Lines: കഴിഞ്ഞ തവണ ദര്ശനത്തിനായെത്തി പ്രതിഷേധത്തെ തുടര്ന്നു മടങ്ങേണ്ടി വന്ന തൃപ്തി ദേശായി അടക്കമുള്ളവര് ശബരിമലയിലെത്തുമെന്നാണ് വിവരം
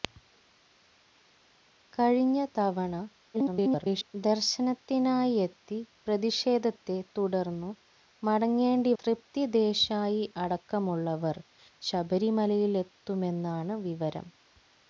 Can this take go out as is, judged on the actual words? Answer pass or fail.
fail